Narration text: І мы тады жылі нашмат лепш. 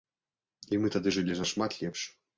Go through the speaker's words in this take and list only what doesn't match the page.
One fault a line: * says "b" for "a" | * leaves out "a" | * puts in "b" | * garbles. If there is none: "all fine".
all fine